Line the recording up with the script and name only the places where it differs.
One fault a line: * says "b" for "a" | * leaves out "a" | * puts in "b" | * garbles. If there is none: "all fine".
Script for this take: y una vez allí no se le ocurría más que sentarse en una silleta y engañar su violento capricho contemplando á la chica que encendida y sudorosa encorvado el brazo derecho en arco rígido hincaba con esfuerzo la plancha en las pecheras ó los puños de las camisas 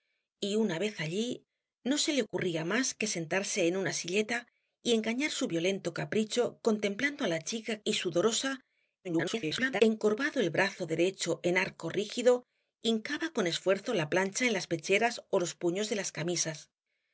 * leaves out "que encendida"
* garbles